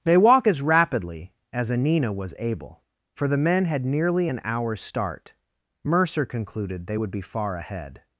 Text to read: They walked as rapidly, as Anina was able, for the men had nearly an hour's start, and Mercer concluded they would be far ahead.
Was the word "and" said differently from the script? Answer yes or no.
yes